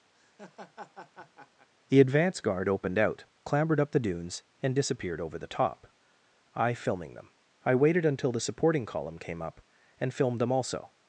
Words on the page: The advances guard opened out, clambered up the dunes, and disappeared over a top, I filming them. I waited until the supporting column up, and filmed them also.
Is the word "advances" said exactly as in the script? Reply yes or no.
no